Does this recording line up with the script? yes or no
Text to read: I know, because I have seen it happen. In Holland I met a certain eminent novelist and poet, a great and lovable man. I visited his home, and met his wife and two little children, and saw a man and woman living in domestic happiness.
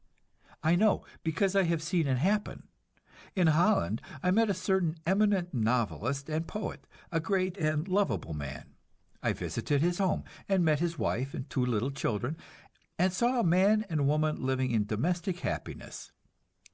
yes